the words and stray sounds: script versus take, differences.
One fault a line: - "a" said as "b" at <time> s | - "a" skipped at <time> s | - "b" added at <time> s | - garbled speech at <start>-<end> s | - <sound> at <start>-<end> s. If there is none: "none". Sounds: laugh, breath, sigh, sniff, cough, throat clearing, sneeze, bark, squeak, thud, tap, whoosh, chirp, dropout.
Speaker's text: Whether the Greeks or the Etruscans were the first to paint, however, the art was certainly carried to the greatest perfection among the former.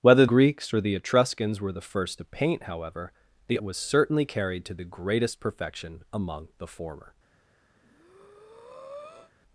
- "the" skipped at 0.2 s
- "art" skipped at 3.6 s
- breath at 7.8-9.3 s